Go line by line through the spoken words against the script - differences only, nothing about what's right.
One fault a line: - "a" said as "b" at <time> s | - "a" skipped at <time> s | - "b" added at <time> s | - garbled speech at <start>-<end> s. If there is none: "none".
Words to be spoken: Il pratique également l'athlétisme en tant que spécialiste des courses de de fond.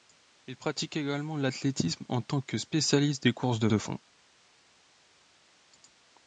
none